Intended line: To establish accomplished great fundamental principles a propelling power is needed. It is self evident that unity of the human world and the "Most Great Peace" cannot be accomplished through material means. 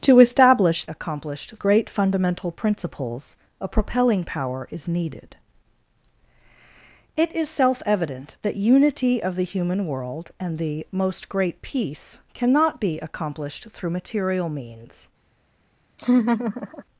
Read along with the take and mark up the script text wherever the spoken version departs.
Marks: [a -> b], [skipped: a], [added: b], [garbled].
To establish accomplished great fundamental principles a propelling power is needed. It is self evident that unity of the human world and the "Most Great Peace" cannot be accomplished through material means.